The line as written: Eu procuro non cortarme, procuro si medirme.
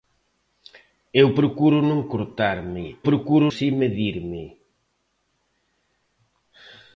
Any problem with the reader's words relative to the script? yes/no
no